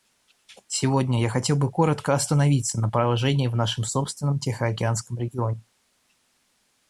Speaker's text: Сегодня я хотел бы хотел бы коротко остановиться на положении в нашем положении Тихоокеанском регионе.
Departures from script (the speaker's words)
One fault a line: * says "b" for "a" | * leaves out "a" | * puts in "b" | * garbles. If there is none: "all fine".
* leaves out "хотел бы"
* says "собственном" for "положении"